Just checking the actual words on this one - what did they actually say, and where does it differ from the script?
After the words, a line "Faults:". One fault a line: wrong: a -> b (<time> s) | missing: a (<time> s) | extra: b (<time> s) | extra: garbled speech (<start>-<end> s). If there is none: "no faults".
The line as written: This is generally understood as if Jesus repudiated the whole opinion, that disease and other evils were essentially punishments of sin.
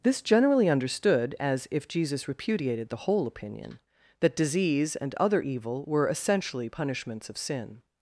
This generally understood as if Jesus repudiated the whole opinion, that disease and other evil were essentially punishments of sin.
Faults:
missing: is (0.2 s)
wrong: evils -> evil (5.4 s)